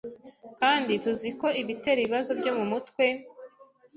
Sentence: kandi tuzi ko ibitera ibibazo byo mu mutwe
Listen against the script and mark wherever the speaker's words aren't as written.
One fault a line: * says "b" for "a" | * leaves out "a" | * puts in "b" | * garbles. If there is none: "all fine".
all fine